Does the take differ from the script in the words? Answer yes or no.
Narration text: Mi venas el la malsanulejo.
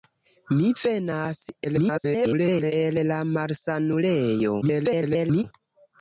yes